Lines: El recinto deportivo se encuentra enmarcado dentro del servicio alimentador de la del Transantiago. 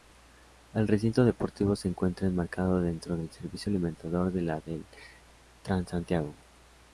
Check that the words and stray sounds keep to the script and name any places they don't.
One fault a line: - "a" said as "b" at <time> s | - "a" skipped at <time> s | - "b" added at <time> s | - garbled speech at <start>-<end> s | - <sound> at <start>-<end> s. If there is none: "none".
none